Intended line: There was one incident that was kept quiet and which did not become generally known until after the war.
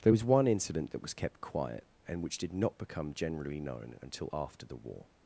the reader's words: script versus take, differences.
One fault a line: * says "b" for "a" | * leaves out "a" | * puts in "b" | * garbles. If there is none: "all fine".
all fine